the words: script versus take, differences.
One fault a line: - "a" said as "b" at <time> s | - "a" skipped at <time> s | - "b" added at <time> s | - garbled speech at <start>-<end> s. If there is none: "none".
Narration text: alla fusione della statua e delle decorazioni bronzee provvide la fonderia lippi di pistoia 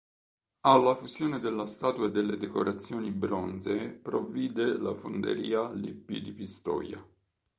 none